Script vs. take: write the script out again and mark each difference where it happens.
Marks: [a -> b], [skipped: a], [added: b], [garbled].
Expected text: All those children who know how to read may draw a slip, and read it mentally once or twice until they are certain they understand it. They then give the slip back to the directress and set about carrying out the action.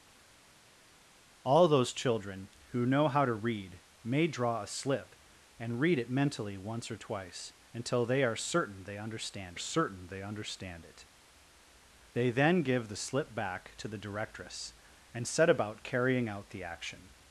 All those children who know how to read may draw a slip, and read it mentally once or twice until they are certain they understand [added: certain they understand] it. They then give the slip back to the directress and set about carrying out the action.